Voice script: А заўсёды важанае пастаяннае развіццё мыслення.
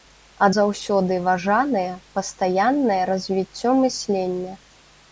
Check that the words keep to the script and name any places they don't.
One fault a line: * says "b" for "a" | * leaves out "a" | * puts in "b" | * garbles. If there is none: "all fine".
all fine